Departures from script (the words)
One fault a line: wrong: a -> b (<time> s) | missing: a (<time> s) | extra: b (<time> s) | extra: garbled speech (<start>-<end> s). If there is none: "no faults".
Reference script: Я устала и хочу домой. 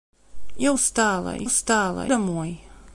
wrong: хочу -> устала (1.4 s)